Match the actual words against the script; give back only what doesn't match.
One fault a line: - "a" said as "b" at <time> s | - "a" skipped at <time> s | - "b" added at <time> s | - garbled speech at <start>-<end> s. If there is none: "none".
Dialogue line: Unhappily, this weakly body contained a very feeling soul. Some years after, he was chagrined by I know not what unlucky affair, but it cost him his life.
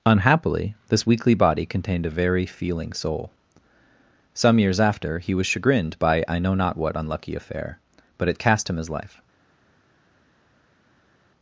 - "cost" said as "cast" at 8.4 s